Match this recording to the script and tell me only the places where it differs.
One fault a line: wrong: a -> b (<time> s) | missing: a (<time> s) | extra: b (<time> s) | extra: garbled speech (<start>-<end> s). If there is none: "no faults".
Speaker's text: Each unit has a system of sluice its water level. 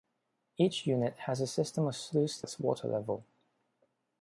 no faults